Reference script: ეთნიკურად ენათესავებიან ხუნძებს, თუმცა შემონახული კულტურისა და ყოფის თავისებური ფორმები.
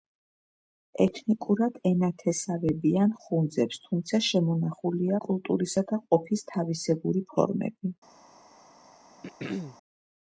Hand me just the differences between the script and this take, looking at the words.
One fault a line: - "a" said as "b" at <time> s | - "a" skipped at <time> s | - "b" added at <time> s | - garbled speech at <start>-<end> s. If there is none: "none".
none